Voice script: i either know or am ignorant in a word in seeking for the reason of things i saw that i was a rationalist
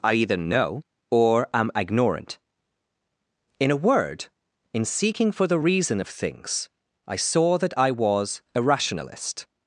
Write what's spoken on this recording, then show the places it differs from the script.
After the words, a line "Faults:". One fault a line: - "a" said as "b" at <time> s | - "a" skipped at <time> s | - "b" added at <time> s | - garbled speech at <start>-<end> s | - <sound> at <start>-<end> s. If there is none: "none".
i either know or am ignorant in a word in seeking for the reason of things i saw that i was a rationalist
Faults:
none